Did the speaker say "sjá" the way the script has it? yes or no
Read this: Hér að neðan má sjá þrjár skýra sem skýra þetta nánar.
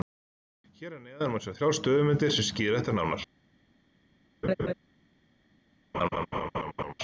yes